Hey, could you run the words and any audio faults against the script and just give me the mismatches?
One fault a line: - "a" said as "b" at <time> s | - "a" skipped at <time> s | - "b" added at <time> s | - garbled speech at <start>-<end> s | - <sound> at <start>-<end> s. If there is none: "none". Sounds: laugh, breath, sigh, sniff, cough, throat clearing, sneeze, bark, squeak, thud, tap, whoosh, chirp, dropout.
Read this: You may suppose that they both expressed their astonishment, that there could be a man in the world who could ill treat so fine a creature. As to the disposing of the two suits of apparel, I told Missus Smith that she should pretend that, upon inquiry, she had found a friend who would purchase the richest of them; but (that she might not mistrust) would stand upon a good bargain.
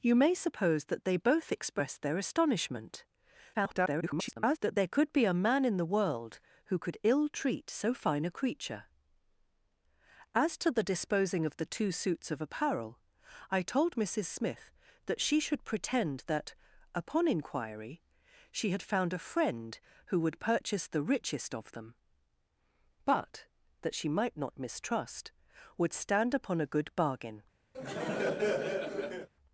- garbled speech at 3.5-4.6 s
- laugh at 27.7-29.3 s